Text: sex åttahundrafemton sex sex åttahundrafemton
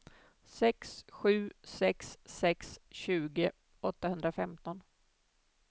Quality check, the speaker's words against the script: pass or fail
fail